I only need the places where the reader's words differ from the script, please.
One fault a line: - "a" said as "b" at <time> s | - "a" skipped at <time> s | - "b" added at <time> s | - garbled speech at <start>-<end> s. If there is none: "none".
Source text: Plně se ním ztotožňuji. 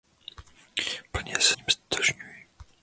none